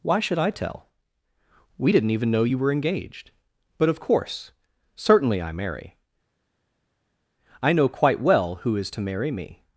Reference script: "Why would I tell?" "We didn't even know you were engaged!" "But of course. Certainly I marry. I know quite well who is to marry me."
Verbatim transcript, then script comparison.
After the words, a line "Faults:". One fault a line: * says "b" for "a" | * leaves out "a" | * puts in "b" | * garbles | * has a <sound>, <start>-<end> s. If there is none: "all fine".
"Why should I tell?" "We didn't even know you were engaged!" "But of course. Certainly I marry. I know quite well who is to marry me."
Faults:
* says "should" for "would"